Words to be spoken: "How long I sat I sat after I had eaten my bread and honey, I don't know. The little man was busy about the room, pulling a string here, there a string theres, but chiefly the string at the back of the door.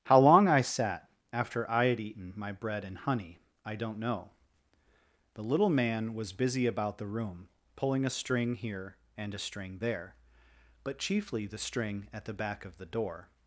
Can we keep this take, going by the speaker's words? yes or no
no